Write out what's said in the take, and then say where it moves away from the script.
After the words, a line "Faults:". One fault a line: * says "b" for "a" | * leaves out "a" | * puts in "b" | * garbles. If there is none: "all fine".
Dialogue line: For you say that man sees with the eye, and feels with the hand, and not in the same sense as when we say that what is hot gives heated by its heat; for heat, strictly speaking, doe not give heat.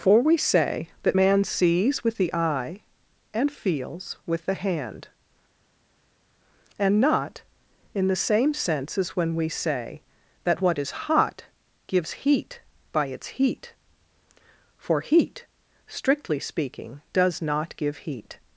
For we say that man sees with the eye, and feels with the hand, and not in the same sense as when we say that what is hot gives heat by its heat; for heat, strictly speaking, does not give heat.
Faults:
* says "we" for "you"
* says "heat" for "heated"
* says "does" for "doe"